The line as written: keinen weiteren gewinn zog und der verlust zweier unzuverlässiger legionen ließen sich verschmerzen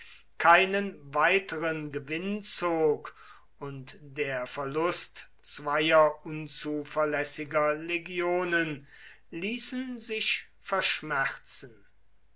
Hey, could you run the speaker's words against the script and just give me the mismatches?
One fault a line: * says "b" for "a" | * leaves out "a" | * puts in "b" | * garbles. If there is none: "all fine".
all fine